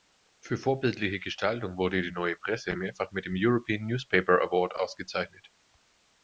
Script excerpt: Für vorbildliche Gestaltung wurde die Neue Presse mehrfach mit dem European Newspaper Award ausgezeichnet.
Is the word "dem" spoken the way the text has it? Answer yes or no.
yes